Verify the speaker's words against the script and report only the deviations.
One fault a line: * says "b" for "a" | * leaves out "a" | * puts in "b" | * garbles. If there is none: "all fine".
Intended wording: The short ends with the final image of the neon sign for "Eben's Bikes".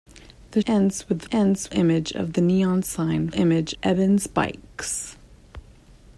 * leaves out "short"
* says "ends" for "final"
* says "image" for "for"